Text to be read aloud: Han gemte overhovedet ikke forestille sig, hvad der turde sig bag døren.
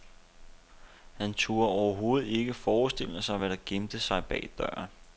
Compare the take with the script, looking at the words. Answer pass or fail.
fail